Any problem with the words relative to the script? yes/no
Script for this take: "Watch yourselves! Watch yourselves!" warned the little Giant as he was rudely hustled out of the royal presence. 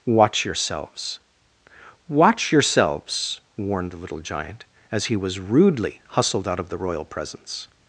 no